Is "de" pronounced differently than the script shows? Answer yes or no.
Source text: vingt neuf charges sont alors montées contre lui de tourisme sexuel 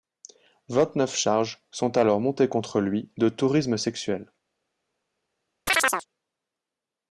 no